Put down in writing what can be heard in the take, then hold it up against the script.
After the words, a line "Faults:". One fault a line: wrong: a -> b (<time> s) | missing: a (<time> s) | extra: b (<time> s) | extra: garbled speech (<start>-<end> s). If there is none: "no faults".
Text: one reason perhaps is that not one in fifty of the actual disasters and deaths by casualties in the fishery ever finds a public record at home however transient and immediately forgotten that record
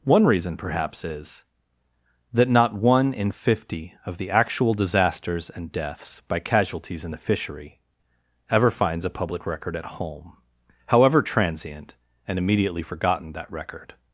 one reason perhaps is that not one in fifty of the actual disasters and deaths by casualties in the fishery ever finds a public record at home however transient and immediately forgotten that record
Faults:
no faults